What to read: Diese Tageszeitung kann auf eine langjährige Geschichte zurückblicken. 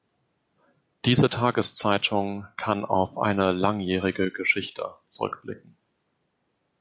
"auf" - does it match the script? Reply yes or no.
yes